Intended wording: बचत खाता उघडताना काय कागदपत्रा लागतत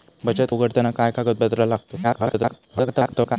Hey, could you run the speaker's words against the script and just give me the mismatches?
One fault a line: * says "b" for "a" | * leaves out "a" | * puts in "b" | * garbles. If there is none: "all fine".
* leaves out "खाता"
* garbles